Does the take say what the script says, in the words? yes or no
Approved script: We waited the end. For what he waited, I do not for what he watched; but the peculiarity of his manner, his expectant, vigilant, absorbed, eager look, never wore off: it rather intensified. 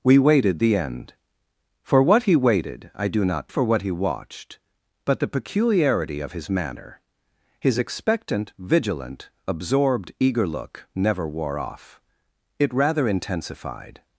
yes